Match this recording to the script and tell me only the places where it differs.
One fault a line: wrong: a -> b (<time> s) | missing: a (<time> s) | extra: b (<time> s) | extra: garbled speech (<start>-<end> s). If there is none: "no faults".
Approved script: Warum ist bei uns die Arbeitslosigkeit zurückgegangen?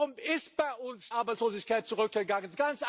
missing: die (1.1 s)